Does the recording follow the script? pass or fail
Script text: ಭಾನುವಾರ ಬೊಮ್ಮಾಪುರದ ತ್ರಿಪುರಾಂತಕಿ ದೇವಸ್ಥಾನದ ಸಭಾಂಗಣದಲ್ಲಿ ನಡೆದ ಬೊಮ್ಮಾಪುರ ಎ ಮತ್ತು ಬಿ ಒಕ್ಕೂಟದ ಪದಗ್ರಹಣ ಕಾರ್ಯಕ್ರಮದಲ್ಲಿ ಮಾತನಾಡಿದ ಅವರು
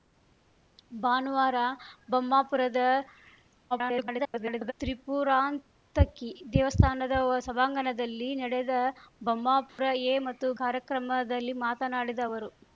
fail